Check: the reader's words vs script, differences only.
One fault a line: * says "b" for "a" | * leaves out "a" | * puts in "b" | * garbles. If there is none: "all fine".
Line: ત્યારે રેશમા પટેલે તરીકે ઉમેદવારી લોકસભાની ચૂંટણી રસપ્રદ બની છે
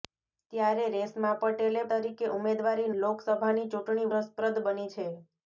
all fine